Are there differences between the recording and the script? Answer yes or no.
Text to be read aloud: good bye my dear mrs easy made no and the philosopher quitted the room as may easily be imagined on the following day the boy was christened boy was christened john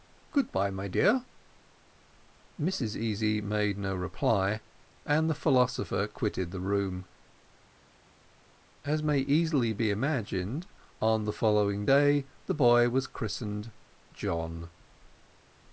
yes